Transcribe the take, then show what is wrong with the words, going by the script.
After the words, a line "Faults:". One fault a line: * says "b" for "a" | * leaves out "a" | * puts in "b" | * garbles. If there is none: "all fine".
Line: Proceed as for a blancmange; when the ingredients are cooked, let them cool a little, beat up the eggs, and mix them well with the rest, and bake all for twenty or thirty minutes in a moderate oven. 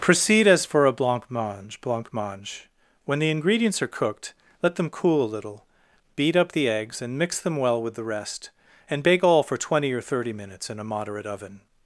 Proceed as for a blancmange blancmange; when the ingredients are cooked, let them cool a little, beat up the eggs, and mix them well with the rest, and bake all for twenty or thirty minutes in a moderate oven.
Faults:
* puts in "blancmange"